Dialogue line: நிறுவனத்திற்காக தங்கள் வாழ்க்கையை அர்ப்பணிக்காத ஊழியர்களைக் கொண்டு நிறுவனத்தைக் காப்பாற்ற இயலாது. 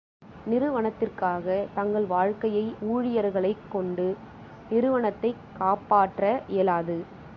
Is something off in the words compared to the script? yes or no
yes